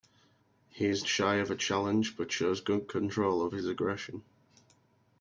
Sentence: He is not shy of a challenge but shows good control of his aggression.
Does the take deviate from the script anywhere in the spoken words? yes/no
yes